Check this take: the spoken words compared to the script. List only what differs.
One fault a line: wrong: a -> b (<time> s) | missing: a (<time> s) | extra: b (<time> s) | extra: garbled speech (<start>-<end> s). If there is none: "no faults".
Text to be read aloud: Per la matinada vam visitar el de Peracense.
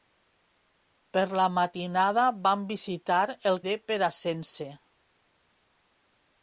no faults